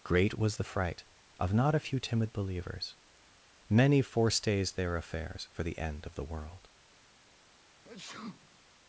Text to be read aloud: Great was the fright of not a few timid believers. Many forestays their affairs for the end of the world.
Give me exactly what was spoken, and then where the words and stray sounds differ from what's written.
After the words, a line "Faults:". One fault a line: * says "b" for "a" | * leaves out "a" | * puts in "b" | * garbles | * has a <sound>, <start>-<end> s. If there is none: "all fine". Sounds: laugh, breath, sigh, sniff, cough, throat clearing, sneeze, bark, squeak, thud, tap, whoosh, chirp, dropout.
Great was the fright of not a few timid believers. Many forestays their affairs for the end of the world.
Faults:
* has a sneeze, 7.8-8.6 s